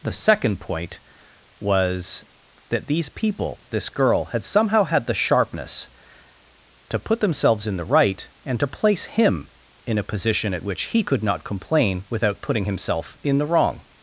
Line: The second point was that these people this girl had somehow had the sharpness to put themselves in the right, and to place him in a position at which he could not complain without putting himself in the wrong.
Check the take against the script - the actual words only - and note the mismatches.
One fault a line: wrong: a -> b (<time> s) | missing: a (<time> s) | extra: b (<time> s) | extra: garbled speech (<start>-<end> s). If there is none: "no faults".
no faults